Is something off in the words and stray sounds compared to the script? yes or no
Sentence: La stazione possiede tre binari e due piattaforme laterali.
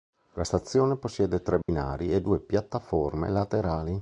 yes